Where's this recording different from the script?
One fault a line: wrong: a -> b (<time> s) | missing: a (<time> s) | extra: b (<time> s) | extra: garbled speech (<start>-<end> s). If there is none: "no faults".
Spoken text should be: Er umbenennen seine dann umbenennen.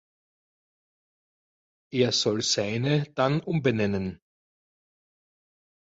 wrong: umbenennen -> soll (2.1 s)